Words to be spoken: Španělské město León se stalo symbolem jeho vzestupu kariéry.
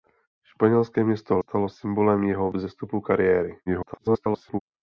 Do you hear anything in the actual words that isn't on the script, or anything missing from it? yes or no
yes